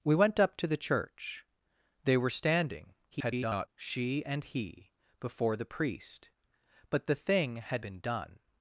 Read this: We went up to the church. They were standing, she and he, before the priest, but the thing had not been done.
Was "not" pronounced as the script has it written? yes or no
no